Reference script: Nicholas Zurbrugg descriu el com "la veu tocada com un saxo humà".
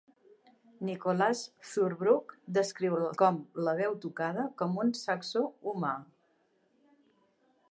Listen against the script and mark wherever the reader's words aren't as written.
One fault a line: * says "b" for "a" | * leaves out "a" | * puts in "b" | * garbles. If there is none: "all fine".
all fine